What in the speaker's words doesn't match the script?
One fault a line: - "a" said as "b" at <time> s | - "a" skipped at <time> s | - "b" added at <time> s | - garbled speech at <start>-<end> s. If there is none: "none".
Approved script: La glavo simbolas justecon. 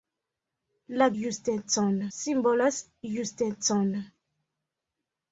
- "glavo" said as "justecon" at 1.2 s